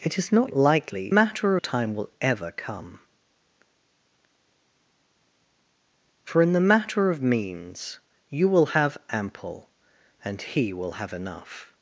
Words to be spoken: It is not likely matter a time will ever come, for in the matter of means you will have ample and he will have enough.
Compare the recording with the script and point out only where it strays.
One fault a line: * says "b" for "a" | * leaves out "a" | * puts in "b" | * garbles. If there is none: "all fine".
all fine